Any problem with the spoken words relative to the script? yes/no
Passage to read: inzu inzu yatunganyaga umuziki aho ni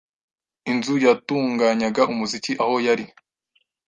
yes